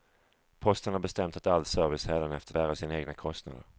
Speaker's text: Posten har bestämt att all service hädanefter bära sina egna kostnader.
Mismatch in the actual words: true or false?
false